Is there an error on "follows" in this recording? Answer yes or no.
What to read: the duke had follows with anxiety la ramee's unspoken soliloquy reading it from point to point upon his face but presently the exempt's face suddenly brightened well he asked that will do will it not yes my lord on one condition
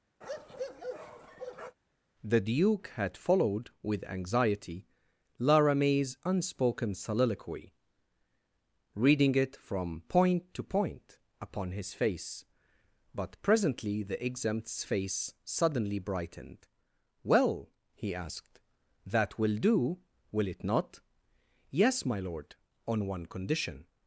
yes